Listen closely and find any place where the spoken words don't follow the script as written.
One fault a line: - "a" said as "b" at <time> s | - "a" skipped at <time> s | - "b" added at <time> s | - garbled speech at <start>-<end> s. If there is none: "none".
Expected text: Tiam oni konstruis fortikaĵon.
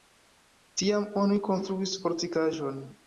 none